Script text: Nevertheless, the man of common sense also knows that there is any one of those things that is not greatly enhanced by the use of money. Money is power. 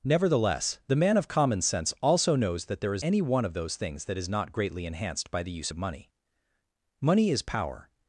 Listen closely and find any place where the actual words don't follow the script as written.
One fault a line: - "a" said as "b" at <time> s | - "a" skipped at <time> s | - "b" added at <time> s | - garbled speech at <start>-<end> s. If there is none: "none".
none